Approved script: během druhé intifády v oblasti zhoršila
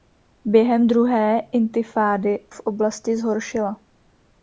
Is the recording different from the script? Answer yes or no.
no